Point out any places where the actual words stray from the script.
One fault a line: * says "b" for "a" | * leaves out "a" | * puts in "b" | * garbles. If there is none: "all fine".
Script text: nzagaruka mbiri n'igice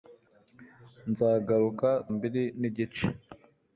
all fine